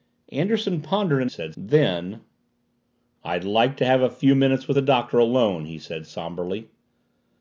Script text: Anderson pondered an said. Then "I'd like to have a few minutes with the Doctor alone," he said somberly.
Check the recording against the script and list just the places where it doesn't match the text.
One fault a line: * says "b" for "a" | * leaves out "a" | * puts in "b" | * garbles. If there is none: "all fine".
all fine